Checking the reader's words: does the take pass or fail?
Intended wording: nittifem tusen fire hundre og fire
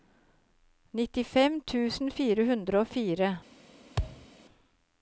pass